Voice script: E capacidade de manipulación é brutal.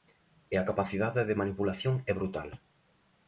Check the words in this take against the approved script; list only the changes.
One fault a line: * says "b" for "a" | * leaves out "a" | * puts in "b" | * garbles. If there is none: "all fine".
* puts in "a"